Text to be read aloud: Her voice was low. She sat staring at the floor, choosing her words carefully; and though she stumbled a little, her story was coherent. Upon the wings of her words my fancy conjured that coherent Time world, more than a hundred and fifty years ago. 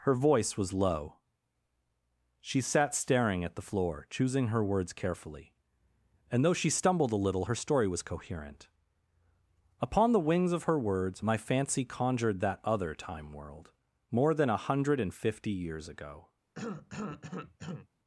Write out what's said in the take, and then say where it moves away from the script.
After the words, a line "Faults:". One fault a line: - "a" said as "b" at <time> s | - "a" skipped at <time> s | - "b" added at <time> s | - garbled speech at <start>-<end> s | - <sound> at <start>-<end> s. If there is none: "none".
Her voice was low. She sat staring at the floor, choosing her words carefully; and though she stumbled a little, her story was coherent. Upon the wings of her words my fancy conjured that other Time world, more than a hundred and fifty years ago.
Faults:
- "coherent" said as "other" at 12.6 s
- cough at 16.5-17.9 s